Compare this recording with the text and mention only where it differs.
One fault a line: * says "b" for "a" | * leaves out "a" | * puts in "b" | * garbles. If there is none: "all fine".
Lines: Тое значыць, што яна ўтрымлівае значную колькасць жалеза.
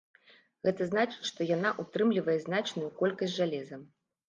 * says "Гэта" for "Тое"